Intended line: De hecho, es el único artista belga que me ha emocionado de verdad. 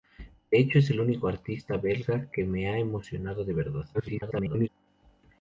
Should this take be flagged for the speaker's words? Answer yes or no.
yes